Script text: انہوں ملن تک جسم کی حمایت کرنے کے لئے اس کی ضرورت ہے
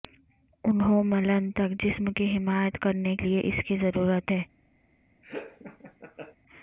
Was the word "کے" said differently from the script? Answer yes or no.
yes